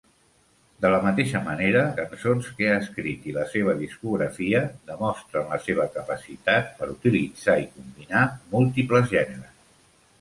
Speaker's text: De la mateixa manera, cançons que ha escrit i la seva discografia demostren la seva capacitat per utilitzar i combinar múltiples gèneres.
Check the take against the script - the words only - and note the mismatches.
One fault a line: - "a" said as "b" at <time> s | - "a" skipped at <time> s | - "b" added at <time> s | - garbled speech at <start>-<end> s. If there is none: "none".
none